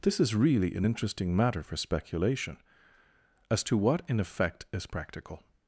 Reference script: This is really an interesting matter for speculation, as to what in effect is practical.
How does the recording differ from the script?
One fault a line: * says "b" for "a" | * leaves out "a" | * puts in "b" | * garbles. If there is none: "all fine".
all fine